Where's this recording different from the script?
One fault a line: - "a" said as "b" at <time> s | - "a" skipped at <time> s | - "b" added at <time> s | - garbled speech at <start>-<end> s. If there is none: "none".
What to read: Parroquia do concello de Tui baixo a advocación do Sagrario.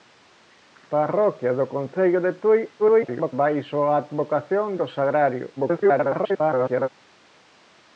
- garbled speech at 2.8-3.3 s
- garbled speech at 5.6-6.9 s